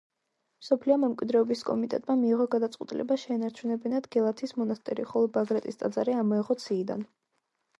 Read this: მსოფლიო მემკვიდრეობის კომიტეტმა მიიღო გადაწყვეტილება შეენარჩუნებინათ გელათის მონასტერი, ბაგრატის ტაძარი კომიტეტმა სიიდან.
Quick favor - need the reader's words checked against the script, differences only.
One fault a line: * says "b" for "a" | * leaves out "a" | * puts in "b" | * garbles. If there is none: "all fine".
* puts in "ხოლო"
* says "ამოეღოთ" for "კომიტეტმა"